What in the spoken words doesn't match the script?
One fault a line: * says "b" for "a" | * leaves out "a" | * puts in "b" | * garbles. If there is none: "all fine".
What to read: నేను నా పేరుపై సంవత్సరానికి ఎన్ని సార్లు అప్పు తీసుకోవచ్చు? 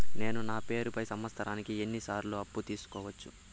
all fine